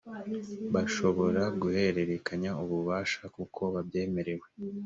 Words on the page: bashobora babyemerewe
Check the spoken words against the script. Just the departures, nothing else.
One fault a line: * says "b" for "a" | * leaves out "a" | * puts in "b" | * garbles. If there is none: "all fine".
* puts in "guhererekanya ububasha kuko"